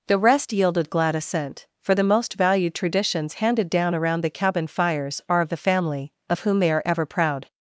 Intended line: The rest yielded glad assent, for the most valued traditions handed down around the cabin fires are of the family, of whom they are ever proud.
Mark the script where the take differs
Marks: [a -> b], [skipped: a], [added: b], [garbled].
The rest yielded glad assent, for the most valued traditions handed down around the cabin fires are of the family, of whom they are ever proud.